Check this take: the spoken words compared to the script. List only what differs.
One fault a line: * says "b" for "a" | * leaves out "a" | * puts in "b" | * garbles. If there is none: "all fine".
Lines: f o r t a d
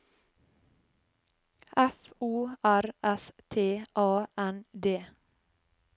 * puts in "s"
* puts in "n"